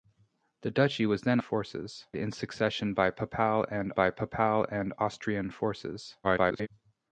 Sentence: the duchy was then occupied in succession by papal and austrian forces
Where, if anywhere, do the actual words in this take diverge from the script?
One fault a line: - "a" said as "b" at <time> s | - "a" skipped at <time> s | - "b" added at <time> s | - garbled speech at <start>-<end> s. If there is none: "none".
- "occupied" said as "forces" at 1.4 s
- "by papal and" added at 3.9 s
- garbled speech at 6.2-6.7 s